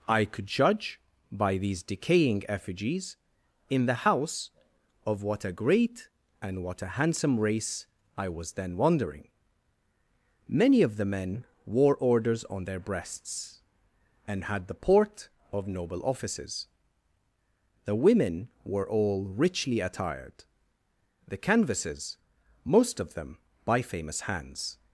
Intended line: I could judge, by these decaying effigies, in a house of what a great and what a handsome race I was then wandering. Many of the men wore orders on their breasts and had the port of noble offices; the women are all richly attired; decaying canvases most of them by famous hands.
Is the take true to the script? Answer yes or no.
no